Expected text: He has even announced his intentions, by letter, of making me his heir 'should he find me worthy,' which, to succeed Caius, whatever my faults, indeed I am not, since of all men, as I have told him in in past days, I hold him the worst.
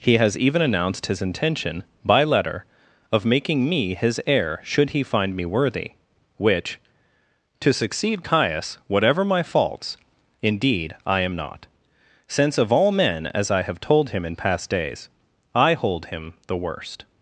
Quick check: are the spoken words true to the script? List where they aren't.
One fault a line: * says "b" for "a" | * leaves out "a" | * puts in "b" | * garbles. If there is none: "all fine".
* says "intention" for "intentions"
* leaves out "in"